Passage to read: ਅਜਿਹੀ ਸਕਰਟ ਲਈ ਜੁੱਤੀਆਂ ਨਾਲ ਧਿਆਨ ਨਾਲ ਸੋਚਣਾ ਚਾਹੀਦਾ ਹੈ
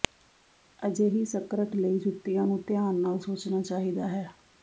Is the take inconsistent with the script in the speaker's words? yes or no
yes